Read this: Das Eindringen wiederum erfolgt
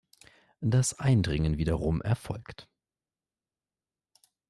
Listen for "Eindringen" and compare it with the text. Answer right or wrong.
right